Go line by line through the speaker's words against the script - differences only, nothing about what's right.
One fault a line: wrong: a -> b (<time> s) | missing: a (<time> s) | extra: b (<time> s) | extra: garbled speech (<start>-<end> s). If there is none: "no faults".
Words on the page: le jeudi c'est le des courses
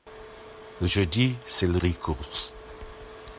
no faults